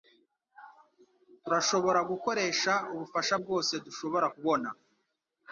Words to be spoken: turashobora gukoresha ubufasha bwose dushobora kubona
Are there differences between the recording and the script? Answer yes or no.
no